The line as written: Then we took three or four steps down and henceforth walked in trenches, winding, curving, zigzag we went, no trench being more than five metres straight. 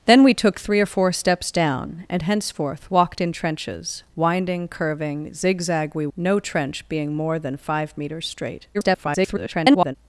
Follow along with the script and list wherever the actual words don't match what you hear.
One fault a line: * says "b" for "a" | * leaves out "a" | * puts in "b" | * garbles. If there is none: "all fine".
* leaves out "went"
* garbles